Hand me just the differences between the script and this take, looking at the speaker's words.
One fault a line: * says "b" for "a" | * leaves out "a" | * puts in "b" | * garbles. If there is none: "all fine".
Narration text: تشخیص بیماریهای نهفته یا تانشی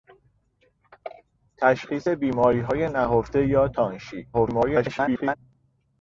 * garbles